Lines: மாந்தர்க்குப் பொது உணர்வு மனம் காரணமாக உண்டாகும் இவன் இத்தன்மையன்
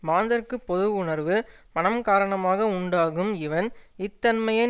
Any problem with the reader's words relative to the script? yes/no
no